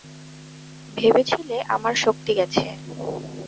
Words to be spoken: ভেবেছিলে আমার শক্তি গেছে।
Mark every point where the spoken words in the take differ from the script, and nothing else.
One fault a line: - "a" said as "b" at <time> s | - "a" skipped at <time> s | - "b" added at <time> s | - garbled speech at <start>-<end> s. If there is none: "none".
none